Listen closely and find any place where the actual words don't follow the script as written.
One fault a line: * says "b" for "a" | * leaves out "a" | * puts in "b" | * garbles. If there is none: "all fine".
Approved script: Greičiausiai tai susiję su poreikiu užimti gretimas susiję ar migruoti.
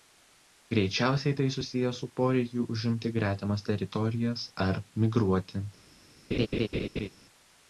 * says "teritorijas" for "susiję"